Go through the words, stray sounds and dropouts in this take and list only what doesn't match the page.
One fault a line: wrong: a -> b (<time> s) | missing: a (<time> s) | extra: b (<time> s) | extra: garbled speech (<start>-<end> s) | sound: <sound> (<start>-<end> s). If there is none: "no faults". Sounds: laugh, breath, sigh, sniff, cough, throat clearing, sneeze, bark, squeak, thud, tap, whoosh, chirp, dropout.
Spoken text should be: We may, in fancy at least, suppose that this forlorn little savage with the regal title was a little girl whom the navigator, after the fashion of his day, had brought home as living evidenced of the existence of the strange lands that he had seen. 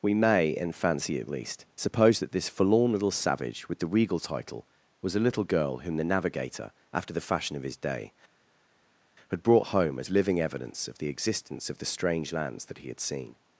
wrong: evidenced -> evidence (10.4 s)